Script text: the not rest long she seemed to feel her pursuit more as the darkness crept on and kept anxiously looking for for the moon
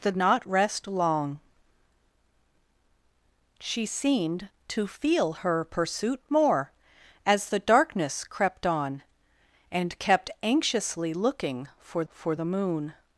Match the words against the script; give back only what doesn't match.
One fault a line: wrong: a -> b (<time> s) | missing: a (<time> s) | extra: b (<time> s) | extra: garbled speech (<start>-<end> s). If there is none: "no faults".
no faults